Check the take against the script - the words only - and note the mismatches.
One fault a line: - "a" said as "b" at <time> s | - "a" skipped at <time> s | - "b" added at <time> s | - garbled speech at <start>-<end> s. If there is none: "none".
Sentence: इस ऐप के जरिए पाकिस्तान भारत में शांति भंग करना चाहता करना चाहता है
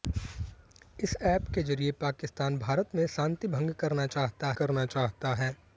none